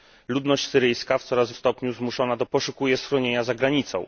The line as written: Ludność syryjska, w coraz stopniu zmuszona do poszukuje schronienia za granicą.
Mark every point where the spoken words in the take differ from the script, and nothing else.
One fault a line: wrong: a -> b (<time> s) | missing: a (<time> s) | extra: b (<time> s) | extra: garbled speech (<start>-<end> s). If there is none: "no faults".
no faults